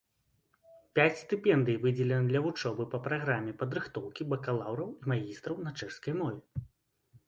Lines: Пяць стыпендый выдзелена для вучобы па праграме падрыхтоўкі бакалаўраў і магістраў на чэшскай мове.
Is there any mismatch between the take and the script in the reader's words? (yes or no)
no